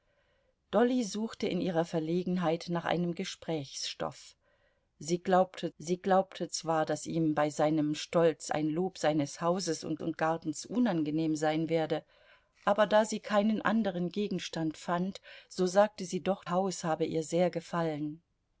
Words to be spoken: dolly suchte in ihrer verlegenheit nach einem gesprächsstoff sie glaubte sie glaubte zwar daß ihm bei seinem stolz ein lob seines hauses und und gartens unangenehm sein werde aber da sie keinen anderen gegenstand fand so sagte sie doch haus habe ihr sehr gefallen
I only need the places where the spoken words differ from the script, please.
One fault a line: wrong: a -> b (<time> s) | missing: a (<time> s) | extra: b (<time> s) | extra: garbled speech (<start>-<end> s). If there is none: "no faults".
no faults